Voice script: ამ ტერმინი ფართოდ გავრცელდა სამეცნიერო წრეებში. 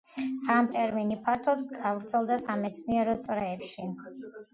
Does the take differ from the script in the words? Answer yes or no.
no